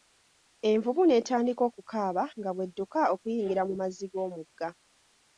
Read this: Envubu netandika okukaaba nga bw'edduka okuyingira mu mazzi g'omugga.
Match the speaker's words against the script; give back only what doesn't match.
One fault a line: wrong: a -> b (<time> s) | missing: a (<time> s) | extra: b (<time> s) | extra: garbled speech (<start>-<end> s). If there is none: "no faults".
no faults